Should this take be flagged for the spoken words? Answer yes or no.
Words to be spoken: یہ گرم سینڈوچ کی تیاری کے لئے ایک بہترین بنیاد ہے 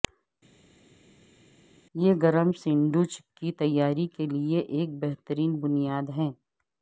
no